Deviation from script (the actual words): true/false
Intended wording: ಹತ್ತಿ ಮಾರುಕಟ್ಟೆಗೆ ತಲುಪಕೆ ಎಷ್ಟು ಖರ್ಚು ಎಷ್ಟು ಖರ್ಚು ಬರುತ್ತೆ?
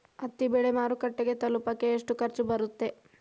true